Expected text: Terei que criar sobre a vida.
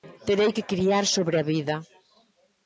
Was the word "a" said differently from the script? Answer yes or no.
no